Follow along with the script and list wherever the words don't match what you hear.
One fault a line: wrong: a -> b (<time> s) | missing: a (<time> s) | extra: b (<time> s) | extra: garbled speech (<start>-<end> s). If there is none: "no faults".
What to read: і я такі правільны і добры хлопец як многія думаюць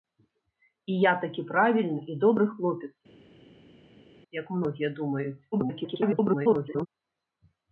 extra: garbled speech (5.5-6.9 s)